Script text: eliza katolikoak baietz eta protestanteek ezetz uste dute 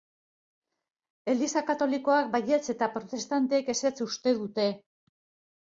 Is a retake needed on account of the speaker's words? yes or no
no